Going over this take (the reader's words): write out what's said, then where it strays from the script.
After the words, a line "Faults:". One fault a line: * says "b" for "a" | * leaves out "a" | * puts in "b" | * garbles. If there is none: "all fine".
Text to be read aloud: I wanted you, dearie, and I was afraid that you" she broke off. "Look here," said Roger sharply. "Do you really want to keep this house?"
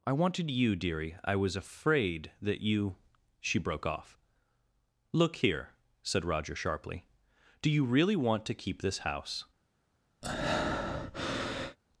I wanted you, dearie, I was afraid that you" she broke off. "Look here," said Roger sharply. "Do you really want to keep this house?"
Faults:
* leaves out "and"